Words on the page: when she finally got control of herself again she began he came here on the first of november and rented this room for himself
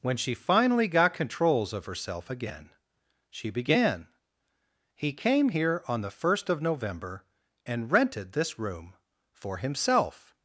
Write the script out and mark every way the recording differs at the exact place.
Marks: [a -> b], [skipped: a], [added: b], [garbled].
when she finally got [control -> controls] of herself again she began he came here on the first of november and rented this room for himself